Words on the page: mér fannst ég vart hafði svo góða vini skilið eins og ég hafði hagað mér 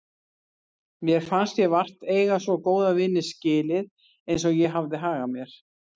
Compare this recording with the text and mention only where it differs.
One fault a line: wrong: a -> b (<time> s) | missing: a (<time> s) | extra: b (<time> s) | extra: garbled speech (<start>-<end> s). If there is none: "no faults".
wrong: hafði -> eiga (2.1 s)